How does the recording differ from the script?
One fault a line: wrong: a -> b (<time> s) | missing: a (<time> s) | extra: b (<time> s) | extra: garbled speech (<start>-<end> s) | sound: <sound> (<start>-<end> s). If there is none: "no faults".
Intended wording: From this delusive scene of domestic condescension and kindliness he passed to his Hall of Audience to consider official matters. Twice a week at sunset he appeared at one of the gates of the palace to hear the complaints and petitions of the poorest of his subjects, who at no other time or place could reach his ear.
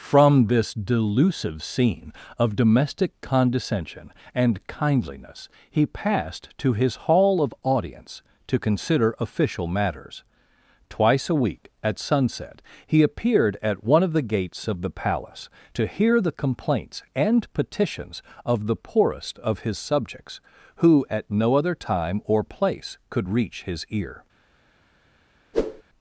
sound: whoosh (25.5-25.8 s)